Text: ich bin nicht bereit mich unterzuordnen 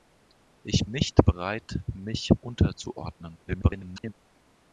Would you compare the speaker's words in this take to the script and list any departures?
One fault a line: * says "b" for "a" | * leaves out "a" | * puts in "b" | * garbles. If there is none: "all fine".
* leaves out "bin"
* garbles